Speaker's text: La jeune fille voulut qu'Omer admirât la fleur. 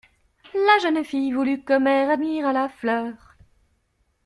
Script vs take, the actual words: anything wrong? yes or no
no